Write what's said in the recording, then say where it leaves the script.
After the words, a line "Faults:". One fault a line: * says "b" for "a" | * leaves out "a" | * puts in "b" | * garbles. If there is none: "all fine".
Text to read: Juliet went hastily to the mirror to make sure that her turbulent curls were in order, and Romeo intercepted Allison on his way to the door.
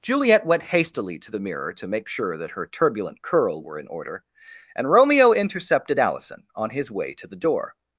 Juliet went hastily to the mirror to make sure that her turbulent curl were in order, and Romeo intercepted Allison on his way to the door.
Faults:
* says "curl" for "curls"